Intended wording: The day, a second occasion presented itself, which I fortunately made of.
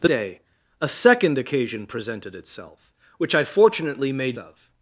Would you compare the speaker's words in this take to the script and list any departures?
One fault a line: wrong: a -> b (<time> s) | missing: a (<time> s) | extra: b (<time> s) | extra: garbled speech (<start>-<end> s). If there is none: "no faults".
no faults